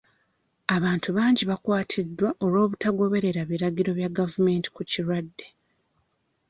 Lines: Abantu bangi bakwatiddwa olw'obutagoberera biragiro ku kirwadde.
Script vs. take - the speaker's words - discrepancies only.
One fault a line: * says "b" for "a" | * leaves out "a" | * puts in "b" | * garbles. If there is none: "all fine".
* puts in "bya gavumenti"